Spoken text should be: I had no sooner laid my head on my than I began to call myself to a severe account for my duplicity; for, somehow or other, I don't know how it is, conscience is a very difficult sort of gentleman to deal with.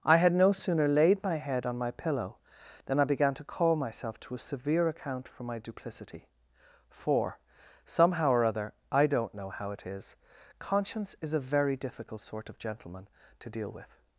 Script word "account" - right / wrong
right